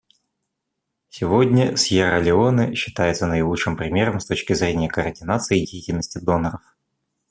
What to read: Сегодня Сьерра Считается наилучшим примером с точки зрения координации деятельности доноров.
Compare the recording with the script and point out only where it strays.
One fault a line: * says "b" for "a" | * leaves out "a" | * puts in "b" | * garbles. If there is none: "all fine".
* puts in "Леоне"